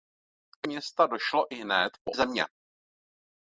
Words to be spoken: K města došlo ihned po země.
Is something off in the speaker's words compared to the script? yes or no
no